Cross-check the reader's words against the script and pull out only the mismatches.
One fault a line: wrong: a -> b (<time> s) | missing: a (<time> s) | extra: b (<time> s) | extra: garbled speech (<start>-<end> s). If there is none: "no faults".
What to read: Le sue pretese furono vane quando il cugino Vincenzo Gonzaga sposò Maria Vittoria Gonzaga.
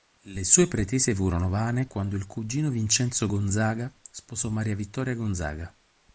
no faults